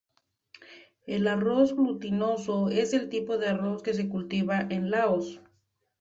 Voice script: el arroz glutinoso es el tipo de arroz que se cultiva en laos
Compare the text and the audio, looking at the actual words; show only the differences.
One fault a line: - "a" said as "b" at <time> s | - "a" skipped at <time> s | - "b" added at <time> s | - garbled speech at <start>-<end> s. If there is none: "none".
none